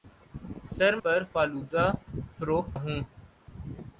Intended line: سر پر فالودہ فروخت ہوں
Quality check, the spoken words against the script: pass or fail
pass